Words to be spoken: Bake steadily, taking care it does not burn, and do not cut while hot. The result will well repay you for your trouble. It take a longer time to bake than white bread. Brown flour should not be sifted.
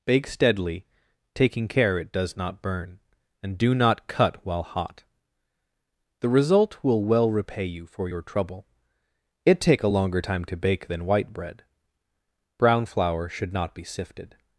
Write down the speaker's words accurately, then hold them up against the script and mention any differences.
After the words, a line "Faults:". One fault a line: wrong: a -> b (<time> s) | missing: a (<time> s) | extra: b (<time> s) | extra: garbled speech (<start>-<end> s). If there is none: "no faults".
Bake steadily, taking care it does not burn, and do not cut while hot. The result will well repay you for your trouble. It take a longer time to bake than white bread. Brown flour should not be sifted.
Faults:
no faults